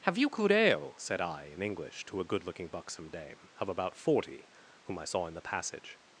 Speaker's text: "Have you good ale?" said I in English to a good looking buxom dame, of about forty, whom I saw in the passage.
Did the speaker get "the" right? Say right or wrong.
right